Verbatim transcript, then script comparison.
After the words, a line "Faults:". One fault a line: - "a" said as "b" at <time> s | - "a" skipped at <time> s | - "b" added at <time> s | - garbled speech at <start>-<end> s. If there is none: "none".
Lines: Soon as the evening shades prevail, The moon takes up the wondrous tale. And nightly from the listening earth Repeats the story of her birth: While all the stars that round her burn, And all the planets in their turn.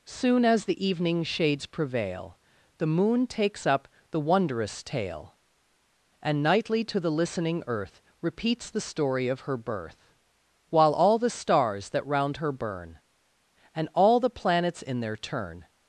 Soon as the evening shades prevail, The moon takes up the wondrous tale. And nightly to the listening earth Repeats the story of her birth: While all the stars that round her burn, And all the planets in their turn.
Faults:
- "from" said as "to" at 6.8 s